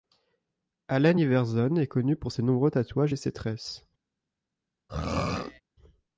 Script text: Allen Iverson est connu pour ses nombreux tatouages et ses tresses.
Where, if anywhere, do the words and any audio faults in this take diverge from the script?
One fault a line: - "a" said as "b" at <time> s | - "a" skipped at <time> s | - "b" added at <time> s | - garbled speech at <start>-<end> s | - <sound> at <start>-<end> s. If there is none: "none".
- throat clearing at 4.9-5.6 s